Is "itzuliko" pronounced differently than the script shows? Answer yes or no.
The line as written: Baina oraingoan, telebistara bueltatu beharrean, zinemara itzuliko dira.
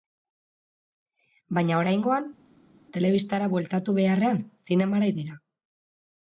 yes